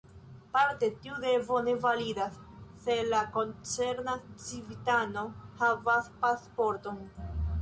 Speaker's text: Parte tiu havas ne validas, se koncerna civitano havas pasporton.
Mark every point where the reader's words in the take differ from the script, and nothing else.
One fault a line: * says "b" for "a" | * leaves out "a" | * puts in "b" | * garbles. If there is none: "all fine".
* says "devo" for "havas"
* puts in "la"